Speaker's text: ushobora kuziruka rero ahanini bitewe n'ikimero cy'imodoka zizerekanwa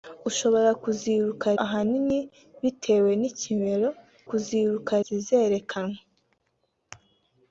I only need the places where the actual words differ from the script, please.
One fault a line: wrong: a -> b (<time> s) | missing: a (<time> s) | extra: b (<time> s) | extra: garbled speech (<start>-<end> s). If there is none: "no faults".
missing: rero (1.5 s)
wrong: cy'imodoka -> kuziruka (4.3 s)